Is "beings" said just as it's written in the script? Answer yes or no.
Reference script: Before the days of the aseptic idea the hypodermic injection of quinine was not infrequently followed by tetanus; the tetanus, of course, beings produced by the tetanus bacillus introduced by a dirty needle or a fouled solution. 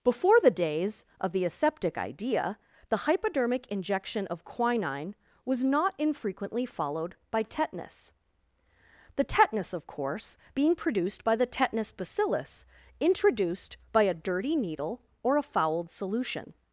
no